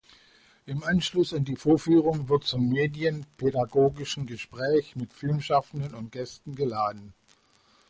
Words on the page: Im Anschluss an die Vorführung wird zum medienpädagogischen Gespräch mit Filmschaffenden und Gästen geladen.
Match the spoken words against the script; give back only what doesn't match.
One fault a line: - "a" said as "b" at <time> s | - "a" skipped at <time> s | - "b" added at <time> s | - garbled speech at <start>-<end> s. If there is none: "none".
none